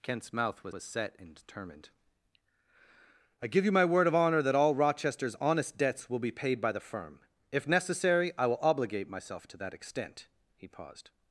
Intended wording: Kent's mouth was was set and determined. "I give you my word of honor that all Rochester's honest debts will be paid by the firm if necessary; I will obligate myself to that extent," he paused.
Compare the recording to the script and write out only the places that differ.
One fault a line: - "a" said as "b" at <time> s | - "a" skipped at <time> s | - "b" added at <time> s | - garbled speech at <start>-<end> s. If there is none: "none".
none